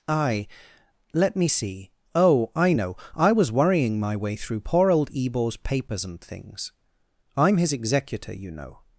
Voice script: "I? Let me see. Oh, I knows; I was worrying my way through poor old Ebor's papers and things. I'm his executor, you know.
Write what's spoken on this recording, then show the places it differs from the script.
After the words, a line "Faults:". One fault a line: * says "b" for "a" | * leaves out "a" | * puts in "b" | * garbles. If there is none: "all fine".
"I? Let me see. Oh, I know; I was worrying my way through poor old Ebor's papers and things. I'm his executor, you know.
Faults:
* says "know" for "knows"